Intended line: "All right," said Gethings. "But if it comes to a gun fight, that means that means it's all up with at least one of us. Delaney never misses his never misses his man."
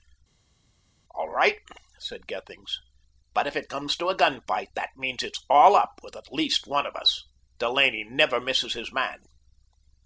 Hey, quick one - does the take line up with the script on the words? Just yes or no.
no